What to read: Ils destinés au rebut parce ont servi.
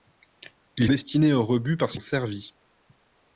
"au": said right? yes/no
yes